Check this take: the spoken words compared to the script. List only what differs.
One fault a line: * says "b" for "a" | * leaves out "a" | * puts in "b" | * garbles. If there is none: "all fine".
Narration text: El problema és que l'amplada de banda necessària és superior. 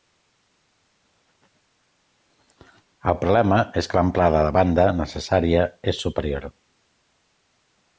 all fine